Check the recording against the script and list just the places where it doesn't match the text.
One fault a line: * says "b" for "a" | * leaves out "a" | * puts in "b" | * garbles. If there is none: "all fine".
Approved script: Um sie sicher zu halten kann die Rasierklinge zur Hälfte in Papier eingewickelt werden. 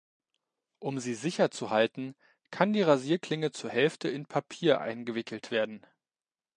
all fine